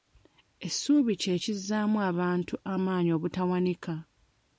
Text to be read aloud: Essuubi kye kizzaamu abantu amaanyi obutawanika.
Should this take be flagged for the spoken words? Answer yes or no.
no